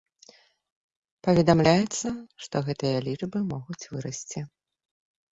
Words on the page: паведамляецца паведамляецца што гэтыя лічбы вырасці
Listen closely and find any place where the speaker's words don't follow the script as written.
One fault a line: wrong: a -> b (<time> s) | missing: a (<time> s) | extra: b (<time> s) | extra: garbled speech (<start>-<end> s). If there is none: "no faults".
missing: паведамляецца (2.1 s)
extra: могуць (3.5 s)